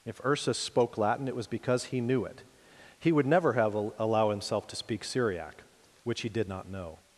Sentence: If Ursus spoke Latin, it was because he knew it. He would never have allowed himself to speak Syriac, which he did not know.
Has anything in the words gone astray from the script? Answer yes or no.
yes